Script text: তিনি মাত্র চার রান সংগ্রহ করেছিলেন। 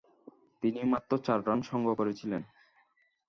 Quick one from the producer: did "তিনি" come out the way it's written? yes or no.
yes